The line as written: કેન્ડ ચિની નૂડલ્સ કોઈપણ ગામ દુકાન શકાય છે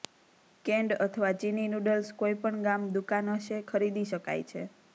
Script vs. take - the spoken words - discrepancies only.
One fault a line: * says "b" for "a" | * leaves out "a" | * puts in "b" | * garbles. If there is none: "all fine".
* puts in "અથવા"
* puts in "હશે ખરીદી"